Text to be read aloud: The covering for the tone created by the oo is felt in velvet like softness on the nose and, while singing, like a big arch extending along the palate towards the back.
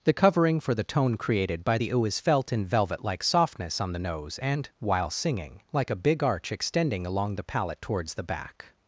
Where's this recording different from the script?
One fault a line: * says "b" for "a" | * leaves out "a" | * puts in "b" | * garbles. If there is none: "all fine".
all fine